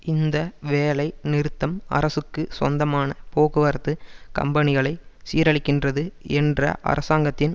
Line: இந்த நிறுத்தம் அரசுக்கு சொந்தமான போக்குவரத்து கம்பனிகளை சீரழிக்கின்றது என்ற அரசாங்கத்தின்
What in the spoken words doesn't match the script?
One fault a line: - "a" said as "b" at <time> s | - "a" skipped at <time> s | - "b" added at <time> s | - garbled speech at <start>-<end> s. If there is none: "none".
- "வேலை" added at 0.7 s